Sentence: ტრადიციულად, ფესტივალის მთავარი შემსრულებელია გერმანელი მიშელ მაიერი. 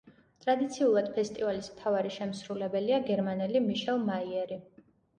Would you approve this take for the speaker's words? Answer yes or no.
yes